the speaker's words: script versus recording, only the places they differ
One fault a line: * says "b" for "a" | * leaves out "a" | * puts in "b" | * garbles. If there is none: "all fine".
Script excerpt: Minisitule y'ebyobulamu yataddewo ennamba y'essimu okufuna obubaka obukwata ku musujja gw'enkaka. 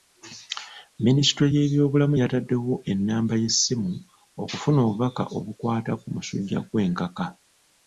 all fine